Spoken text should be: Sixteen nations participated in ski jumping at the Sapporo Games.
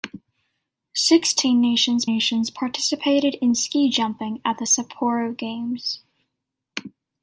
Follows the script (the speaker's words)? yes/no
no